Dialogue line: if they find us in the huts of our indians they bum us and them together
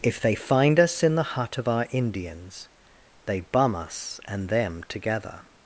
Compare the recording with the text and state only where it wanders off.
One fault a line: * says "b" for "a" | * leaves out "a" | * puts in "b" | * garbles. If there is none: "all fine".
* says "hut" for "huts"